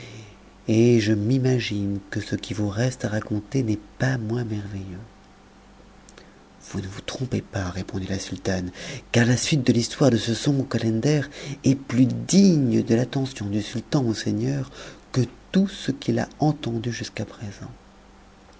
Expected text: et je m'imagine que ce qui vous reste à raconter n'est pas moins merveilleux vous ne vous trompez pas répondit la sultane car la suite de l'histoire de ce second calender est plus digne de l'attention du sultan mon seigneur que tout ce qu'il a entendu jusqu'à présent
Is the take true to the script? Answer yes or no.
yes